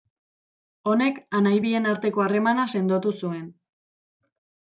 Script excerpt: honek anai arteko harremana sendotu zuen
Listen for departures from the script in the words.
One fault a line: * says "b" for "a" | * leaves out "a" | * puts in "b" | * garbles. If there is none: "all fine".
* puts in "bien"